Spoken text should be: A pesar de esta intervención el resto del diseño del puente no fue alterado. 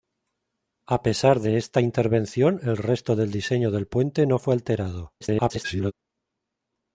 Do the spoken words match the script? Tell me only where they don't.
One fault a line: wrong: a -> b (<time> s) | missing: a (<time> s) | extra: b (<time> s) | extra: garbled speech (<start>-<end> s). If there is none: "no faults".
extra: garbled speech (5.2-5.9 s)